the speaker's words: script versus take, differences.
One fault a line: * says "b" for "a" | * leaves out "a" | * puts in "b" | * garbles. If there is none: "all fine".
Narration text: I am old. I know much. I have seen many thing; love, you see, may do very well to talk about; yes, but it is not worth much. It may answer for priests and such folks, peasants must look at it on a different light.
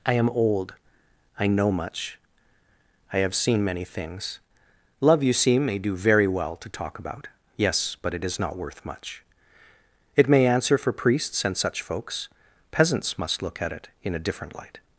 * says "things" for "thing"
* says "in" for "on"